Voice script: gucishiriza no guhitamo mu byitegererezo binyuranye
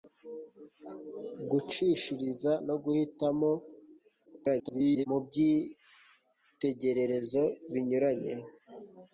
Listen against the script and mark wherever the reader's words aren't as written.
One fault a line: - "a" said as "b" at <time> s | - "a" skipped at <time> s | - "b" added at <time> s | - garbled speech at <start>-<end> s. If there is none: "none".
- garbled speech at 4.3-5.1 s